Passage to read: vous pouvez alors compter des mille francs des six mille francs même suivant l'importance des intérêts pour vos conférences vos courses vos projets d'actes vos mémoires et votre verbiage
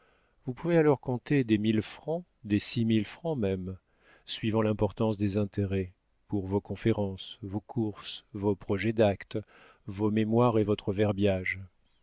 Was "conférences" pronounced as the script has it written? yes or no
yes